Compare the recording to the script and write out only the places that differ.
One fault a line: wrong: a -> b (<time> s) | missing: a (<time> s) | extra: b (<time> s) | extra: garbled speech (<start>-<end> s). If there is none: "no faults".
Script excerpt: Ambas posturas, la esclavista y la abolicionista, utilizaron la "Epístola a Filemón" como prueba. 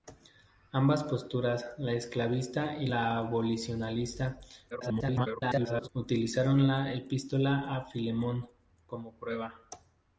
extra: garbled speech (4.7-5.9 s)